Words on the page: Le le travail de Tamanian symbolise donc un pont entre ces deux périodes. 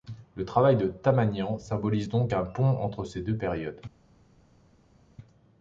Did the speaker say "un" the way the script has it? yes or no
yes